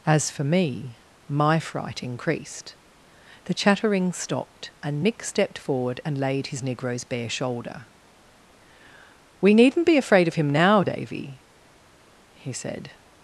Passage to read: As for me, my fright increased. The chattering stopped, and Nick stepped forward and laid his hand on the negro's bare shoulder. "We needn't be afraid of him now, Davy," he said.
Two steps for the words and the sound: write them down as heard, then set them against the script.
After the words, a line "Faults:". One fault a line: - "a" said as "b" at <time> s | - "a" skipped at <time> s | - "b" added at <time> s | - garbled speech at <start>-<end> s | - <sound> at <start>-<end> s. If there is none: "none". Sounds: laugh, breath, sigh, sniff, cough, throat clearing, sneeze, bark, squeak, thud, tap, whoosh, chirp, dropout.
As for me, my fright increased. The chattering stopped, and Nick stepped forward and laid his negro's bare shoulder. "We needn't be afraid of him now, Davy," he said.
Faults:
- "hand on the" skipped at 6.6 s